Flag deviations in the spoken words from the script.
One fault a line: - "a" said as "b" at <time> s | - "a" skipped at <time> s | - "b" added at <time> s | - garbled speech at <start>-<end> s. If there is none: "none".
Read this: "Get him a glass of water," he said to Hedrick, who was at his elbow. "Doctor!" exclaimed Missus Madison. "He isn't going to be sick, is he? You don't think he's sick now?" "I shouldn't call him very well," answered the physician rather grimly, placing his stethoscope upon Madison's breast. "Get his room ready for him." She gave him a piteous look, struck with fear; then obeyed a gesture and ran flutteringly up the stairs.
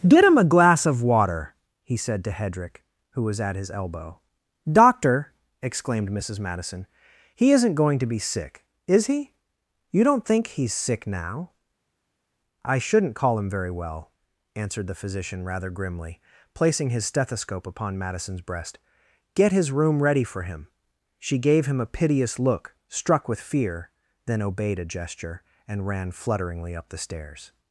none